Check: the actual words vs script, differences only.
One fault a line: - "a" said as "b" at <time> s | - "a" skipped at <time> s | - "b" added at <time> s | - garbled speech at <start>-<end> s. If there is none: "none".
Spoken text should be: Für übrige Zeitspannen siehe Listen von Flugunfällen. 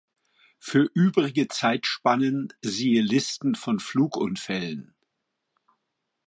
none